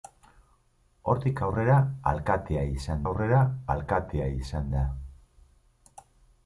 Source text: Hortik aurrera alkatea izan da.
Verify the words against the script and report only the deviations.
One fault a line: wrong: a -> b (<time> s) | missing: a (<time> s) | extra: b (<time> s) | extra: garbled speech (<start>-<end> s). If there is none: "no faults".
extra: aurrera alkatea izan (3.1 s)